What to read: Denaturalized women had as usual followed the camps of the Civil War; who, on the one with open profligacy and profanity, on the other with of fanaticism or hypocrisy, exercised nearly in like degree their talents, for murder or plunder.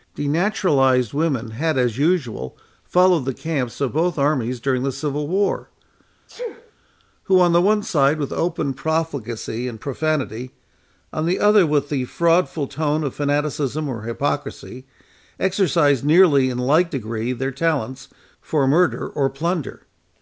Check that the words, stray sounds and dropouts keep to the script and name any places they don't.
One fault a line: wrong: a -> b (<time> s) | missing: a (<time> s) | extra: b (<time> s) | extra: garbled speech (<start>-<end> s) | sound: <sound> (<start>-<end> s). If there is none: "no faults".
extra: both armies during (3.9 s)
sound: sneeze (6.3-6.7 s)
extra: side (7.8 s)
extra: the fraudful tone (11.9 s)